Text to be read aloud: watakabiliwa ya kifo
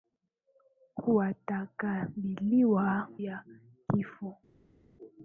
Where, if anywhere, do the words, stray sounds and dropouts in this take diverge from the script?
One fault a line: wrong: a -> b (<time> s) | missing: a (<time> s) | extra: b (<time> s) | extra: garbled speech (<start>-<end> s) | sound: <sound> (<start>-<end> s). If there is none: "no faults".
no faults